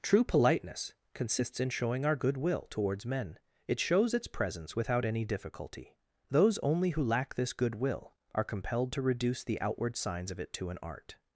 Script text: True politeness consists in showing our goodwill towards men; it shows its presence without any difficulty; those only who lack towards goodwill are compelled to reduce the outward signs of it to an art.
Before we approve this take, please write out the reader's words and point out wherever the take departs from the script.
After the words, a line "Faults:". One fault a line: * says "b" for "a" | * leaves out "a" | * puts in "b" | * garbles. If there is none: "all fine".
True politeness consists in showing our goodwill towards men; it shows its presence without any difficulty; those only who lack this goodwill are compelled to reduce the outward signs of it to an art.
Faults:
* says "this" for "towards"